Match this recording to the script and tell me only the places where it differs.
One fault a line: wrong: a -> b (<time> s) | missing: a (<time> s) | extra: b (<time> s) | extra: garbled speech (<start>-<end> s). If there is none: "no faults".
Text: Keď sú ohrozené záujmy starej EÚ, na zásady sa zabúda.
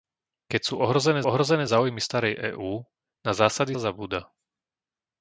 extra: ohrozené (1.3 s)
missing: sa (3.7 s)